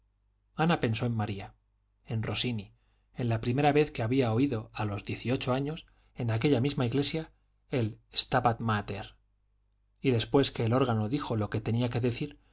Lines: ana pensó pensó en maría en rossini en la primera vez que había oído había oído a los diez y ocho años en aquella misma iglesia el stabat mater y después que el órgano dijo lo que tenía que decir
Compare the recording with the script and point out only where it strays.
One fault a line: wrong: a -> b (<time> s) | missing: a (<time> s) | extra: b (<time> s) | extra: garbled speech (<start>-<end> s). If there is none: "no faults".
missing: pensó (1.1 s)
missing: había oído (4.7 s)